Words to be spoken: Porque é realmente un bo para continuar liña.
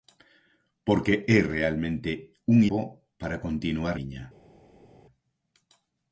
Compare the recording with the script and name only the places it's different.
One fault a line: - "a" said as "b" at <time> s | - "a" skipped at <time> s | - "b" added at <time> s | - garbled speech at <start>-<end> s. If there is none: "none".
none